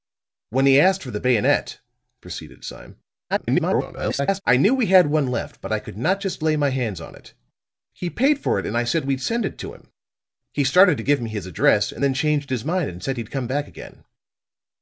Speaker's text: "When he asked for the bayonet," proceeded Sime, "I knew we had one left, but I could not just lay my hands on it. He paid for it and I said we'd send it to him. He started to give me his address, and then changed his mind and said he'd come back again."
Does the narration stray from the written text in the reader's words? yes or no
yes